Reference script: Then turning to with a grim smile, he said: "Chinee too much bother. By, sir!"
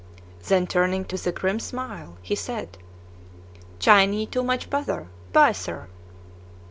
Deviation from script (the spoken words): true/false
false